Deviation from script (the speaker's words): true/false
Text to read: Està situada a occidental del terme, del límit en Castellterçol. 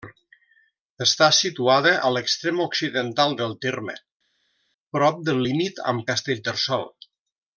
true